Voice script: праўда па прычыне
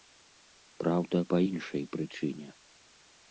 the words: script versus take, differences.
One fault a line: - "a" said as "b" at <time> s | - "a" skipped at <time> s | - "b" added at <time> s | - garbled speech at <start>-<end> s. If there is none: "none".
- "іншай" added at 1.5 s